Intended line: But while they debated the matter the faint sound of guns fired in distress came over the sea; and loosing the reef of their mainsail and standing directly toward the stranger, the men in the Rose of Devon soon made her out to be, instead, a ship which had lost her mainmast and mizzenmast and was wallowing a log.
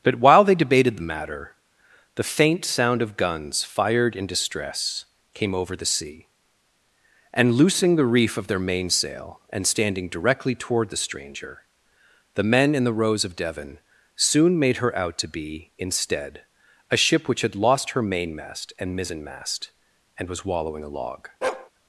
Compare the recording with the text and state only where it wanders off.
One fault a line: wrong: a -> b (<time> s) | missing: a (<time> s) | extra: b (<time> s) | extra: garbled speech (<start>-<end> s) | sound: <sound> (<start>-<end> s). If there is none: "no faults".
sound: bark (21.4-21.7 s)